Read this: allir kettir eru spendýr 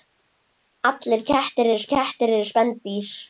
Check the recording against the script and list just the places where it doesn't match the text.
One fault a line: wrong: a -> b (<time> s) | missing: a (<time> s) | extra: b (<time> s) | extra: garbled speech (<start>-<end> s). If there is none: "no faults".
extra: kettir eru (1.9 s)